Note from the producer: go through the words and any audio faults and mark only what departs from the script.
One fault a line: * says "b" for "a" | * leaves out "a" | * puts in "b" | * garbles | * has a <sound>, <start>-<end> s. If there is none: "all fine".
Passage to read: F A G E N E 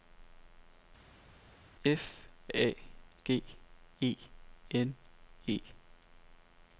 all fine